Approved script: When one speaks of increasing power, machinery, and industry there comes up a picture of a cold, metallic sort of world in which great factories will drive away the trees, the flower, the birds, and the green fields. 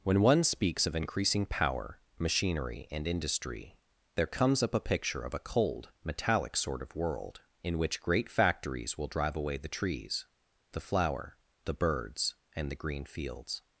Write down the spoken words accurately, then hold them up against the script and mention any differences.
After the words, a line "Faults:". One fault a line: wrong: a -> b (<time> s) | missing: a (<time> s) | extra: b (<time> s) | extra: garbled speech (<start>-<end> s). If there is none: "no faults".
When one speaks of increasing power, machinery, and industry there comes up a picture of a cold, metallic sort of world in which great factories will drive away the trees, the flower, the birds, and the green fields.
Faults:
no faults